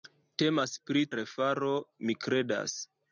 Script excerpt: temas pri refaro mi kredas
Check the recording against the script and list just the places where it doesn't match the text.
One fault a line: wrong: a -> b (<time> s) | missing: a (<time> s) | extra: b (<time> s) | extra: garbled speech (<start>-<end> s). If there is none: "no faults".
no faults